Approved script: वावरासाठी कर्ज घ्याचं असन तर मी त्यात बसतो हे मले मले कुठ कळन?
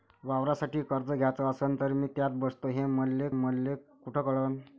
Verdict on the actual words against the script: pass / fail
pass